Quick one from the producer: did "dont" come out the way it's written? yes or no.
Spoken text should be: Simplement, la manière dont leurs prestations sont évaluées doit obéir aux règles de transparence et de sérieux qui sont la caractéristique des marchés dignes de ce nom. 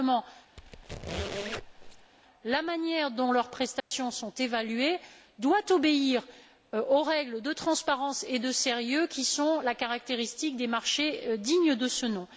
yes